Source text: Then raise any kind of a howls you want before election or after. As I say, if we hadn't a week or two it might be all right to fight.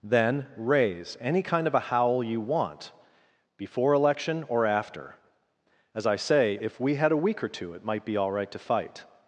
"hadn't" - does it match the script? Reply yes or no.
no